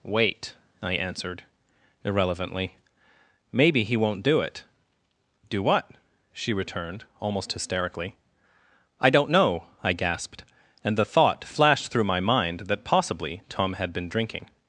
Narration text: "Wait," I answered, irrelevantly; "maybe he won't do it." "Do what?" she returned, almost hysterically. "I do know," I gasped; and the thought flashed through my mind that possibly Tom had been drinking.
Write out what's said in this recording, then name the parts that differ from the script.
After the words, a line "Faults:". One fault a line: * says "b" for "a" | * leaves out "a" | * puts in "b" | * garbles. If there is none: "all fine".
"Wait," I answered, irrelevantly; "maybe he won't do it." "Do what?" she returned, almost hysterically. "I don't know," I gasped; and the thought flashed through my mind that possibly Tom had been drinking.
Faults:
* says "don't" for "do"